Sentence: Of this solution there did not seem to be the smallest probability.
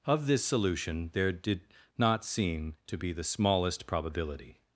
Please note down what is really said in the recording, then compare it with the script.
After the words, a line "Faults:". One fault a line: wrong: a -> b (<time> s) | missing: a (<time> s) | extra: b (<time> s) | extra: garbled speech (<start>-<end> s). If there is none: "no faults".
Of this solution there did not seem to be the smallest probability.
Faults:
no faults